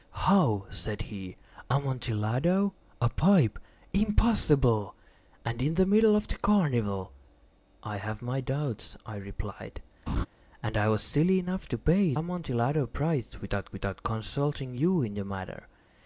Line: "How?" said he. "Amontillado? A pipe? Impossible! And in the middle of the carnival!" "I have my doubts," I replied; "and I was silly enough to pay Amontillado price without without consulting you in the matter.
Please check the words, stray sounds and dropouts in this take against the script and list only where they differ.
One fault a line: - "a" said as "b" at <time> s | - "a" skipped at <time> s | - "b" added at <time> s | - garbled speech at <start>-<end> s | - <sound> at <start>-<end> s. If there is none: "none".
- laugh at 10.1-10.3 s